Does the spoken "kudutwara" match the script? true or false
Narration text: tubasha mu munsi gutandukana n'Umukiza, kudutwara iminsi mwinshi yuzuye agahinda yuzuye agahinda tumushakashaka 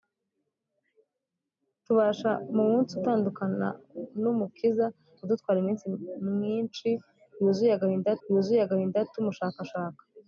true